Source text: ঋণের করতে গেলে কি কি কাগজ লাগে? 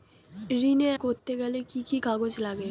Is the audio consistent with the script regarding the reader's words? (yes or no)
yes